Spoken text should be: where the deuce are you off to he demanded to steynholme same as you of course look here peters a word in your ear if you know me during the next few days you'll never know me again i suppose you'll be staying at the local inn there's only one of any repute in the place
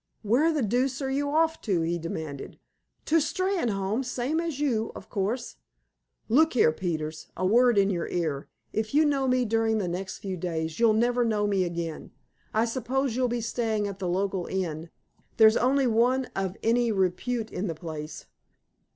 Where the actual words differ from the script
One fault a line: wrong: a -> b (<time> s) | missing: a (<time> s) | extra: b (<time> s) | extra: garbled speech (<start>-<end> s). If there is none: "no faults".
no faults